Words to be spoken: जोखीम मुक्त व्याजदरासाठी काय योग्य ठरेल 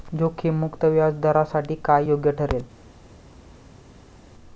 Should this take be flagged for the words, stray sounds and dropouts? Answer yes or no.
no